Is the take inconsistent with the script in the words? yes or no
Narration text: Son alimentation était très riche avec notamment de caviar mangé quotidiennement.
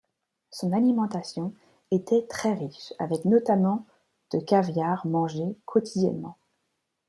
no